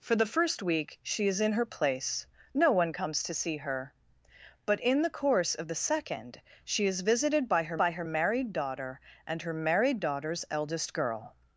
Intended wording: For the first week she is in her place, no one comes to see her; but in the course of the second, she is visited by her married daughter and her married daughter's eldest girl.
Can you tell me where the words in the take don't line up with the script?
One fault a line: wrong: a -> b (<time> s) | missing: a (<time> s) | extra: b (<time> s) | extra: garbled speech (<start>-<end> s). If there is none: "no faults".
extra: by her (7.8 s)